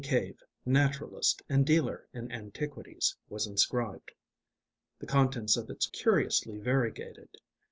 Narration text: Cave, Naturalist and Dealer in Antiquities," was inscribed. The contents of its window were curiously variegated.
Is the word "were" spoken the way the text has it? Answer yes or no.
no